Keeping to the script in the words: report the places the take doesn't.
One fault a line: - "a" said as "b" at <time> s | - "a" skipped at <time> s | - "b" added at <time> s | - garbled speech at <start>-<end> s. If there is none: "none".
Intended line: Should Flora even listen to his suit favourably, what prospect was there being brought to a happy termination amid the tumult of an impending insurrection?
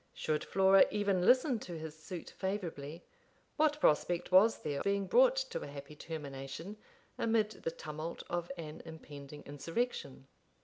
none